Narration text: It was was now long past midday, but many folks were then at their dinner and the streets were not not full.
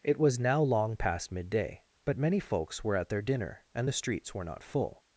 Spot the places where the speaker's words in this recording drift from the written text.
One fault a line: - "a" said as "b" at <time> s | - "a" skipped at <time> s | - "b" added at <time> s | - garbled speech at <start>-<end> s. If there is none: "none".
- "was" skipped at 0.4 s
- "then" skipped at 3.0 s
- "not" skipped at 4.6 s